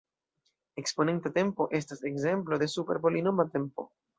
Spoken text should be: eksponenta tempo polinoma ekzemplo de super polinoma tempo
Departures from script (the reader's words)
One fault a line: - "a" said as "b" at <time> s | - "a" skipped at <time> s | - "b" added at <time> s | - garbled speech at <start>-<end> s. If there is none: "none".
- "polinoma" said as "estas" at 1.8 s